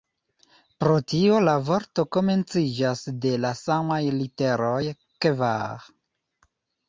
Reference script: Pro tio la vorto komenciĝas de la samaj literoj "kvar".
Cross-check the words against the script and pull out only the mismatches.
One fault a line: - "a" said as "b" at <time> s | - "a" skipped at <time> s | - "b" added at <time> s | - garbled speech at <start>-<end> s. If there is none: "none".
none